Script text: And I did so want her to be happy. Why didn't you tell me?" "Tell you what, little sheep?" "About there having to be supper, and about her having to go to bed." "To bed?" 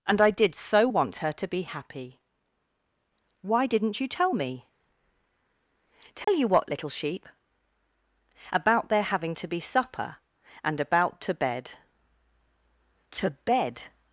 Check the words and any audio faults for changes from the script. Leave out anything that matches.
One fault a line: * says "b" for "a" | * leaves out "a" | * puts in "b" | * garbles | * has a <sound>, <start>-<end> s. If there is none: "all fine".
* has a dropout, 6.2-6.3 s
* leaves out "her having to go"